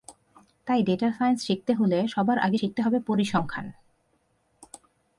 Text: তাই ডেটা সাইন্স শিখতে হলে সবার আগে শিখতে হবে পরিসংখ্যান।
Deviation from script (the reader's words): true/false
false